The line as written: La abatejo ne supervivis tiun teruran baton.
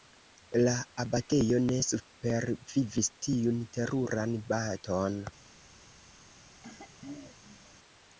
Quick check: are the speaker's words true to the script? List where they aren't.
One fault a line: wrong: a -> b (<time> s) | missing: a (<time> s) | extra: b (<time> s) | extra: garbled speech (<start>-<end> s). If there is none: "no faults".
no faults